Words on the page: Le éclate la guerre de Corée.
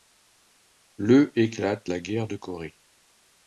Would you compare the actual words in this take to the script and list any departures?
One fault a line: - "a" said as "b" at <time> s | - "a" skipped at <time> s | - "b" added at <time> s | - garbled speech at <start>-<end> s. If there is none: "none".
none